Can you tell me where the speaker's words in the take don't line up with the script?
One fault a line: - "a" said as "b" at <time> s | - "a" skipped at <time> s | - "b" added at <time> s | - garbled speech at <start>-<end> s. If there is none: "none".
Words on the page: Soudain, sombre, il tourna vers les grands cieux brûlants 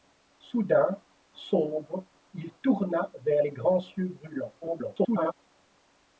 - garbled speech at 4.6-5.3 s